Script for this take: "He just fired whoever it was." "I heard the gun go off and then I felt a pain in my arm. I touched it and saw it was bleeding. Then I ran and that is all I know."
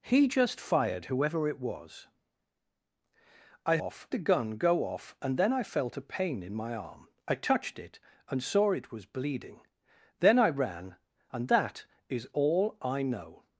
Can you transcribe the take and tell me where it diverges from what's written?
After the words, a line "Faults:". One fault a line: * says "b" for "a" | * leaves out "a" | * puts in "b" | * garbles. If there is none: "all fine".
"He just fired whoever it was." "I off the gun go off and then I felt a pain in my arm. I touched it and saw it was bleeding. Then I ran and that is all I know."
Faults:
* says "off" for "heard"